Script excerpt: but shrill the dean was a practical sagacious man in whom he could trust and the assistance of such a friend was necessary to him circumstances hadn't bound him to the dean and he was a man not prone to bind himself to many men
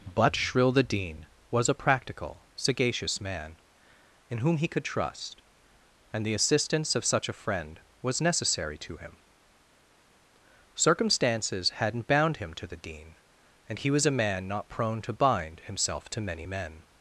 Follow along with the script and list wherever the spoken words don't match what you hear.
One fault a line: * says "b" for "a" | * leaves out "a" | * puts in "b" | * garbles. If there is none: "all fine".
all fine